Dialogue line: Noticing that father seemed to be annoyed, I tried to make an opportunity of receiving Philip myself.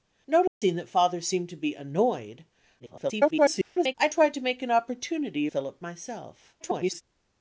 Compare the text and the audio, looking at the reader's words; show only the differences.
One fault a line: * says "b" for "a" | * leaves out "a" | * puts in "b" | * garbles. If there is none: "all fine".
* garbles
* leaves out "of receiving"
* garbles